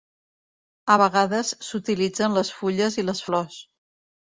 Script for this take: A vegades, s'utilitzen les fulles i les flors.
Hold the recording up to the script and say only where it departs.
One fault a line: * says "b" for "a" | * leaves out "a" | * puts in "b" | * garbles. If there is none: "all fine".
all fine